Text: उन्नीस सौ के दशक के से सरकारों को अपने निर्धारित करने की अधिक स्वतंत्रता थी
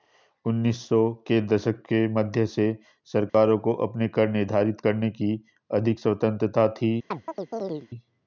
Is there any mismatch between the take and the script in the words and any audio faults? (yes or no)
yes